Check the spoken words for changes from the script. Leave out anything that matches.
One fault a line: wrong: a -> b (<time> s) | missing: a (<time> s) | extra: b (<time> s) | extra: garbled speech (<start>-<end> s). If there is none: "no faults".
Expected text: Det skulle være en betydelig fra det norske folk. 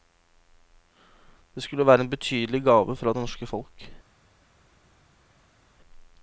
extra: gave (2.6 s)